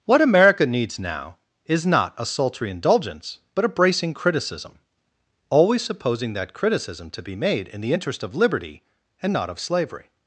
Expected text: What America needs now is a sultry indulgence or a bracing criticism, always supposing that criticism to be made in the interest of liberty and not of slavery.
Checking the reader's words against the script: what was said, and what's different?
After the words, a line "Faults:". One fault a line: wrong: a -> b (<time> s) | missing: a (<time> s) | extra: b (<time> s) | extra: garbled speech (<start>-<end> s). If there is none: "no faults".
What America needs now is not a sultry indulgence but a bracing criticism, always supposing that criticism to be made in the interest of liberty and not of slavery.
Faults:
extra: not (1.9 s)
wrong: or -> but (3.5 s)